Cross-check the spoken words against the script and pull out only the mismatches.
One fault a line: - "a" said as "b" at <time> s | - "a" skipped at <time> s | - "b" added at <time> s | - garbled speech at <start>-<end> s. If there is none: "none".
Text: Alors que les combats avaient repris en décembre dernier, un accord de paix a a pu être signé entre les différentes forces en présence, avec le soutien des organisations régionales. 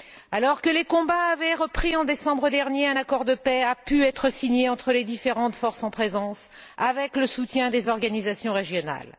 - "a" skipped at 3.8 s